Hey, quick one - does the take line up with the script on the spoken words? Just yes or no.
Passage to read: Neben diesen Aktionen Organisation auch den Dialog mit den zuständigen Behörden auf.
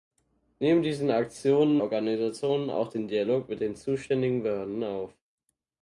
yes